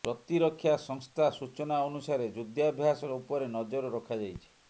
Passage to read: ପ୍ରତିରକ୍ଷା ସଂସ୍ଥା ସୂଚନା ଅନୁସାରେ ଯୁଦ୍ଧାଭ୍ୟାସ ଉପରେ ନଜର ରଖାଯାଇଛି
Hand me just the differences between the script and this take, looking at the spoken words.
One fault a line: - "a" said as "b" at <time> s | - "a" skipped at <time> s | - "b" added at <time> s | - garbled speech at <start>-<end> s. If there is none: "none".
none